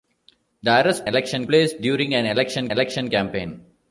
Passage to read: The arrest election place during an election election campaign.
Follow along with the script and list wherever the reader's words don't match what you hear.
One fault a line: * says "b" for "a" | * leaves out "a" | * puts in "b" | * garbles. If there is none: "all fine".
all fine